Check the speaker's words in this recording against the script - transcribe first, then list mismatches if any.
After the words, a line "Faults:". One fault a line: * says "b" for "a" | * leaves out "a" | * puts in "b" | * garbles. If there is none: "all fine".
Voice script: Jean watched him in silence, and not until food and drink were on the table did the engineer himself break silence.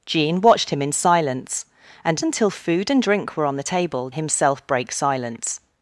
Jean watched him in silence, and until food and drink were on the table himself break silence.
Faults:
* leaves out "not"
* leaves out "did the engineer"